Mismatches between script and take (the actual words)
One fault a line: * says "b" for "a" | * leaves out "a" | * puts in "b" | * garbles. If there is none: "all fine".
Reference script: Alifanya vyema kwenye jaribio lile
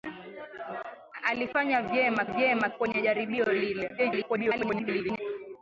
* puts in "vyema"
* garbles